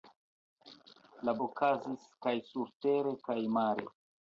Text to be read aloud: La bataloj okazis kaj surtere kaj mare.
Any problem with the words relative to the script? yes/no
yes